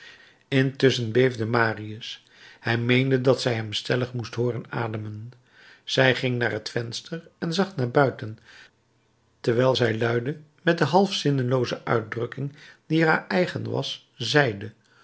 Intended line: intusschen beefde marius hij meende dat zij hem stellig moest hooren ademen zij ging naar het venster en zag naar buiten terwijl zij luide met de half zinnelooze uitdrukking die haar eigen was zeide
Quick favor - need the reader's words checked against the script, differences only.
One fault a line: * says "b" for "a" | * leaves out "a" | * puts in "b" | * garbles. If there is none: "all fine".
all fine